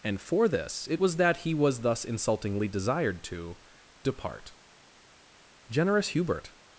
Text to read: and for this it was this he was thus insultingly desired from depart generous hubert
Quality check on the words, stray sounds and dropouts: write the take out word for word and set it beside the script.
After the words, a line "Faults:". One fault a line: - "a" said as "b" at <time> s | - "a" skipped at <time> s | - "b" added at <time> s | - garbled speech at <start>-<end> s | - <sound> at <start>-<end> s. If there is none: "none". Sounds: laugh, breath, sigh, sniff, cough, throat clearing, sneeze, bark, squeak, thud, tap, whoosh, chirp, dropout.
and for this it was that he was thus insultingly desired to depart generous hubert
Faults:
- "this" said as "that" at 1.2 s
- "from" said as "to" at 3.2 s